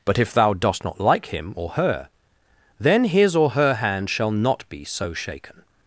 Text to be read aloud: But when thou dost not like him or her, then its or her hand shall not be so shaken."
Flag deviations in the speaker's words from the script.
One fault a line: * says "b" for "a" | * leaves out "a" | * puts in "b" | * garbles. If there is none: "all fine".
* says "if" for "when"
* says "his" for "its"